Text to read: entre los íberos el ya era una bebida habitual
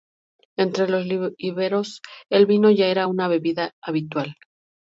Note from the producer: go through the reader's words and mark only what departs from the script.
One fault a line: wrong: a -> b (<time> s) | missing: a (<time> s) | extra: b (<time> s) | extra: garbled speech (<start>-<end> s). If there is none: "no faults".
extra: vino (2.5 s)